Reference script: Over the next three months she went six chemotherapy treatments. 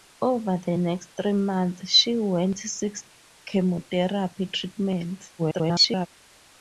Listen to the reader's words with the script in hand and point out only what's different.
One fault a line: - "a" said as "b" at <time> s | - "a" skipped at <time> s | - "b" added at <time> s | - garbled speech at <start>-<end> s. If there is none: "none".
- garbled speech at 5.4-6.1 s